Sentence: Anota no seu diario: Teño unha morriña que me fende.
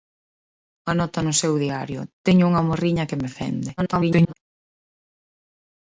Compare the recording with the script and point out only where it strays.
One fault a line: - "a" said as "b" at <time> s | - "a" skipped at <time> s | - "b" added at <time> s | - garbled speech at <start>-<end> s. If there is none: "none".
- garbled speech at 3.8-4.3 s